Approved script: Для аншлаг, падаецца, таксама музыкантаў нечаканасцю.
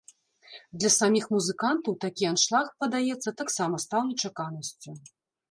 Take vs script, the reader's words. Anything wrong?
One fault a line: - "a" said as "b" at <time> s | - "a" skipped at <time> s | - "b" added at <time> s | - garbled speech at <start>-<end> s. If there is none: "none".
- "саміх музыкантаў такі" added at 1.0 s
- "музыкантаў" said as "стаў" at 3.9 s